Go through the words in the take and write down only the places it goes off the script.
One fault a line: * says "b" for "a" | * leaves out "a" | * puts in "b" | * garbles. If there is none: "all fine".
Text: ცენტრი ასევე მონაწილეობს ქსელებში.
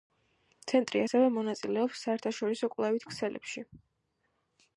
* puts in "საერთაშორისო კვლევით"